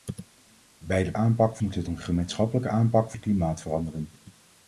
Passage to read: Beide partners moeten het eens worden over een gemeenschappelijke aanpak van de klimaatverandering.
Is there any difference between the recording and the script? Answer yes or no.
yes